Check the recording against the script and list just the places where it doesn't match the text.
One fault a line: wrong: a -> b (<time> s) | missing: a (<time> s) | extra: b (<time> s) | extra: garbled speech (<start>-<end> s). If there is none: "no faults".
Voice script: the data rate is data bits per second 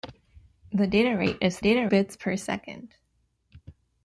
no faults